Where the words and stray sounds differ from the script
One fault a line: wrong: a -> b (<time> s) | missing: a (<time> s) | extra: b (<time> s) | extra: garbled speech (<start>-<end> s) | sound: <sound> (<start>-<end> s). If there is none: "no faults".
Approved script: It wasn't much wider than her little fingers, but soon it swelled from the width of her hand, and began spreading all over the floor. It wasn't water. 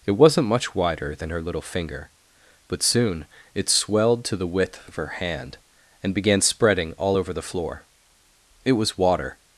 wrong: fingers -> finger (1.6 s)
wrong: from -> to (4.2 s)
wrong: wasn't -> was (8.7 s)